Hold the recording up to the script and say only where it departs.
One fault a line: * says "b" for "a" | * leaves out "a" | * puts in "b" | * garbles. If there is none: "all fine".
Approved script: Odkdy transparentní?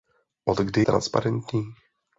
all fine